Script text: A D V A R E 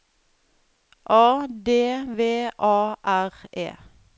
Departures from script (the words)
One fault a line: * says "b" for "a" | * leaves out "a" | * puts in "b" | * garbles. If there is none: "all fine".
all fine